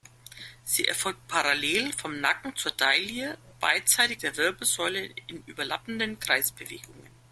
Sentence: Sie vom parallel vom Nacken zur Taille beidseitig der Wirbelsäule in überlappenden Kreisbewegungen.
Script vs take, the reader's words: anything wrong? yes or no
yes